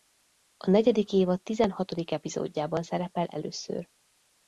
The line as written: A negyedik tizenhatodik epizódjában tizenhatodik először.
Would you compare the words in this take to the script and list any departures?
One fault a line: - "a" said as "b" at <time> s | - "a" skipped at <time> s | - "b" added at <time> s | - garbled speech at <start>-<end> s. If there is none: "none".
- "évad" added at 1.1 s
- "tizenhatodik" said as "szerepel" at 2.8 s